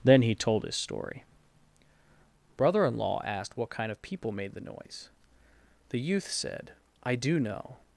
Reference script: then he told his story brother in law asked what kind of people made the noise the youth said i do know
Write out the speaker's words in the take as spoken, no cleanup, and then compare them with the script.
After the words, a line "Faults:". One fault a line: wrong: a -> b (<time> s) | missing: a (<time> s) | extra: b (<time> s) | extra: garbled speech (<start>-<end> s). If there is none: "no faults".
then he told his story brother in law asked what kind of people made the noise the youth said i do know
Faults:
no faults